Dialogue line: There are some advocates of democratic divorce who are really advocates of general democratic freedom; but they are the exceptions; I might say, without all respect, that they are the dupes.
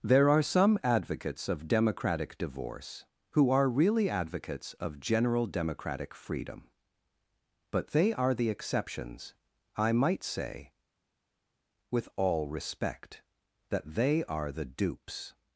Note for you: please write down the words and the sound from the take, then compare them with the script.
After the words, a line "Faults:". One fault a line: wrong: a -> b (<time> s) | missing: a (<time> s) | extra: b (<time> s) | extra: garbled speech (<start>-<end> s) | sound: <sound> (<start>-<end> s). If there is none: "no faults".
There are some advocates of democratic divorce who are really advocates of general democratic freedom; but they are the exceptions; I might say, with all respect, that they are the dupes.
Faults:
wrong: without -> with (11.9 s)